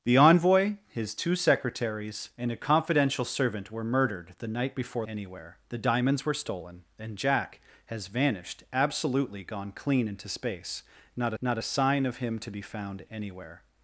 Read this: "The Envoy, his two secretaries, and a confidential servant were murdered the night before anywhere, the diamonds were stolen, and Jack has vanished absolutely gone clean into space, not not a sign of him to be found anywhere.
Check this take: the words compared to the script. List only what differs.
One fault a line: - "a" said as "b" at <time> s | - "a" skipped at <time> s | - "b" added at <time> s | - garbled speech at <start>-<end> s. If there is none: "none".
none